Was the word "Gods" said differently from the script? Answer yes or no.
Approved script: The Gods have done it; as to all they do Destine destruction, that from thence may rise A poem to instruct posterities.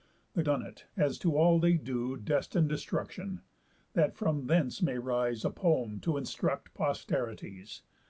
yes